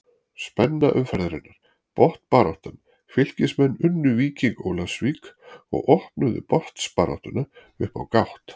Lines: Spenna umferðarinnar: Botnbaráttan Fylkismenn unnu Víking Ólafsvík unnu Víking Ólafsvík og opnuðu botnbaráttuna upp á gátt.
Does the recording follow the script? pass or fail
fail